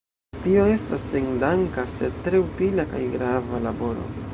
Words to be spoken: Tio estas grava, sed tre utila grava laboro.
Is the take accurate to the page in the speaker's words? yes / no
no